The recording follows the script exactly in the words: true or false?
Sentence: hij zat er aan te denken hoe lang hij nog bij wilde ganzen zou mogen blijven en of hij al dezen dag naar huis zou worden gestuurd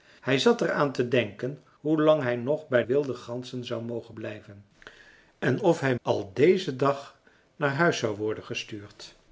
true